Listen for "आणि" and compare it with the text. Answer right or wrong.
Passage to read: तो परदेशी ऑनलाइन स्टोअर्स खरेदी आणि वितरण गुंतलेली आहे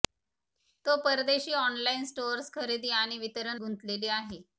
right